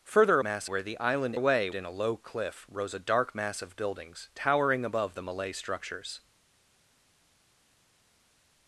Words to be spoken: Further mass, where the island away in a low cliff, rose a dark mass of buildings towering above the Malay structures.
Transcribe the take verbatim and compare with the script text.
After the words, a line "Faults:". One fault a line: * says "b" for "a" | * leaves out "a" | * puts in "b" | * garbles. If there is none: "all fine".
Further mass, where the island away in a low cliff, rose a dark mass of buildings towering above the Malay structures.
Faults:
all fine